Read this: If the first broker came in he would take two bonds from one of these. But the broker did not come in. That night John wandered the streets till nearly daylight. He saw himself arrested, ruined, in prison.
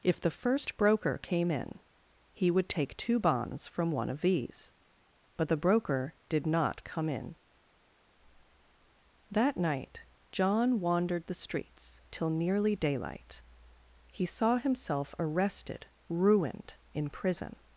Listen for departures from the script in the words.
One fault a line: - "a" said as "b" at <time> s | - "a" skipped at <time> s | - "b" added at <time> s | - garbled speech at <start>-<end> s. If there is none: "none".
none